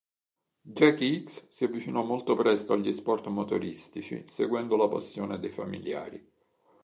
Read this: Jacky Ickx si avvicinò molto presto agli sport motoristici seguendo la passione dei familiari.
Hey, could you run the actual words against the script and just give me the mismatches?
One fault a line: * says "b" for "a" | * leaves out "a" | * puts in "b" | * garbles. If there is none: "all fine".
all fine